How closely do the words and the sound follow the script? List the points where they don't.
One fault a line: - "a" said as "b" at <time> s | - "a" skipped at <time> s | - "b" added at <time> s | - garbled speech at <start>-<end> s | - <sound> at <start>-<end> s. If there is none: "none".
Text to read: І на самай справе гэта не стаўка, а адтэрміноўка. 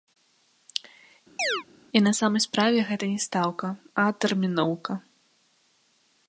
- chirp at 1.4-1.6 s